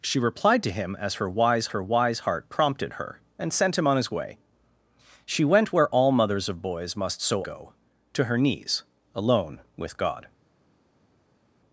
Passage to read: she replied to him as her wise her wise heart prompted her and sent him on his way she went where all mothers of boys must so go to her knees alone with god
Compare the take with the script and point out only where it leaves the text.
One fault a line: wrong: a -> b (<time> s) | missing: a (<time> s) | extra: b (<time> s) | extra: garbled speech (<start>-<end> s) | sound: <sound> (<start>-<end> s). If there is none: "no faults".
no faults